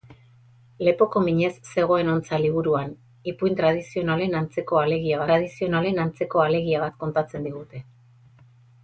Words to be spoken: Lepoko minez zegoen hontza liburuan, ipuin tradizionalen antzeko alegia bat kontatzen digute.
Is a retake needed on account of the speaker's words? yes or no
yes